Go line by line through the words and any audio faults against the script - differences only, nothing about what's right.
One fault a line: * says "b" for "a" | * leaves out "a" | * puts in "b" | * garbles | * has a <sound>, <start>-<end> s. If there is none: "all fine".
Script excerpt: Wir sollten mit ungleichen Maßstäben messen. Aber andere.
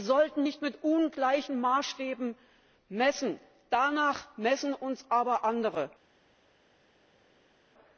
* puts in "nicht"
* puts in "Danach messen uns"